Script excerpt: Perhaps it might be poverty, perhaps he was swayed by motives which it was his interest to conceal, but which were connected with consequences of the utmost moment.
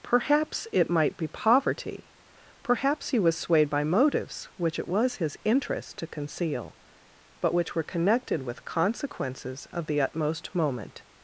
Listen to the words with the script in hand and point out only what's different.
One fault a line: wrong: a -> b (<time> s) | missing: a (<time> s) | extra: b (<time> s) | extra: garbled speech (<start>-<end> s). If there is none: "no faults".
no faults